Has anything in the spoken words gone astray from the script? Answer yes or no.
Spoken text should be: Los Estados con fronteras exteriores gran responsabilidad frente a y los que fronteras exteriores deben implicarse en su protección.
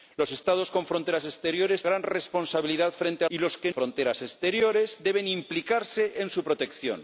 no